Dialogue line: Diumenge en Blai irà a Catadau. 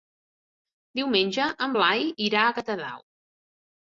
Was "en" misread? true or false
false